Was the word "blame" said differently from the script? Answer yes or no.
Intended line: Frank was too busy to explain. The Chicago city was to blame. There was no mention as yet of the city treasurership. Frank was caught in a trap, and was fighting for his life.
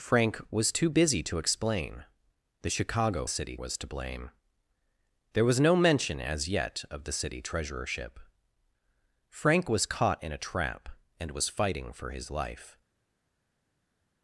no